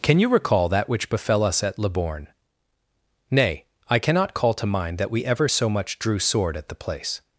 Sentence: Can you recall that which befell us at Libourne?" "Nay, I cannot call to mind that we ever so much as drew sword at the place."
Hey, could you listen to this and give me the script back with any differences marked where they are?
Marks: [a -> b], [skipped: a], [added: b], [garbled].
Can you recall that which befell us at Libourne?" "Nay, I cannot call to mind that we ever so much [skipped: as] drew sword at the place."